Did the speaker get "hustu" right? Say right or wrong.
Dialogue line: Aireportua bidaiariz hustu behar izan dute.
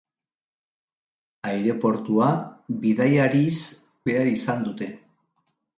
wrong